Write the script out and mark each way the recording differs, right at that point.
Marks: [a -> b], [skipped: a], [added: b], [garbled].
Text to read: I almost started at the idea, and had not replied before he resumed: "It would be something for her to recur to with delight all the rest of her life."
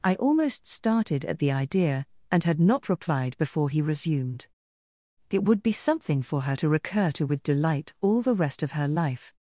I almost started at the idea, and had not replied before he resumed: "It would be something for her to recur to with delight all the rest of her life."